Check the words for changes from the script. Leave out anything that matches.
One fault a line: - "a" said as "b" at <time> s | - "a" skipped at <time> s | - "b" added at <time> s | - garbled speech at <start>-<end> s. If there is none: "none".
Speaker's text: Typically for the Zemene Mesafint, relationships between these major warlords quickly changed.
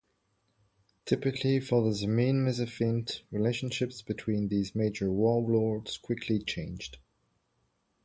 none